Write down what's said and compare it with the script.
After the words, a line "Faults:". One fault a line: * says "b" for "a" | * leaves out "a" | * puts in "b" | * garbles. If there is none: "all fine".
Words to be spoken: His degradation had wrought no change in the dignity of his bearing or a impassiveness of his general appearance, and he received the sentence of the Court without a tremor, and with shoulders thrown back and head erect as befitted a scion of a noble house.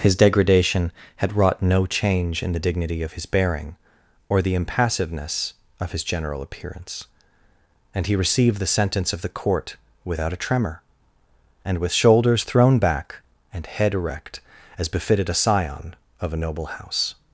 His degradation had wrought no change in the dignity of his bearing or the impassiveness of his general appearance, and he received the sentence of the Court without a tremor, and with shoulders thrown back and head erect as befitted a scion of a noble house.
Faults:
* says "the" for "a"